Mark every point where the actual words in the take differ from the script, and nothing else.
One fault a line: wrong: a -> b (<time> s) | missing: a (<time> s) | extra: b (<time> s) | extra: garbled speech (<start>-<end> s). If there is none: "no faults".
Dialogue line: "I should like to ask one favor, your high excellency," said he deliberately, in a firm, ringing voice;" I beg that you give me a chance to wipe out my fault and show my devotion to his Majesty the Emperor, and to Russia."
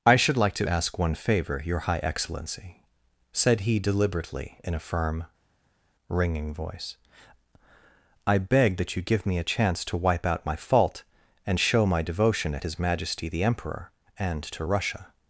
wrong: to -> at (12.5 s)